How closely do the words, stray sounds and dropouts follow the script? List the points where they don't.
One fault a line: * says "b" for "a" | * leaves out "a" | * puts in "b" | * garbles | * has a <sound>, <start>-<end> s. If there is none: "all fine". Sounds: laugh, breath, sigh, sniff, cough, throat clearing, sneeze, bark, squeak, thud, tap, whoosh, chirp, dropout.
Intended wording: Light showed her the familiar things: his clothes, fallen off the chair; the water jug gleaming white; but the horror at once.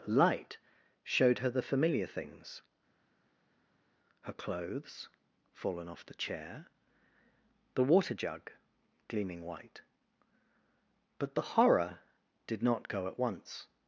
* says "her" for "his"
* puts in "did not go"